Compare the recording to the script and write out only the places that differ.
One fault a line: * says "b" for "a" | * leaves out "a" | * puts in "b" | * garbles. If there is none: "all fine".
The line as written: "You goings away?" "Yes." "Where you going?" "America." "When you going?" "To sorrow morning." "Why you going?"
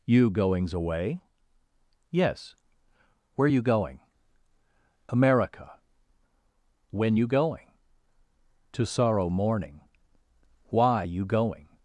all fine